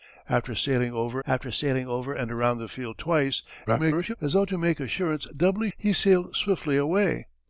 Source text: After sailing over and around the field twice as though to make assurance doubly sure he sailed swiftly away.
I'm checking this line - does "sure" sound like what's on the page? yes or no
no